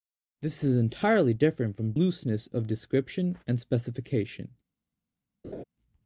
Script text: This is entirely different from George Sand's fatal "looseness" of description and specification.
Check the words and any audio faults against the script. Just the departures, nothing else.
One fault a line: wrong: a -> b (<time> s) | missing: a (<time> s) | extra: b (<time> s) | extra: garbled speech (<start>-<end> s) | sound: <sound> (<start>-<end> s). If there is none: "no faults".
missing: George Sand's fatal (1.9 s)
sound: laugh (5.4-5.6 s)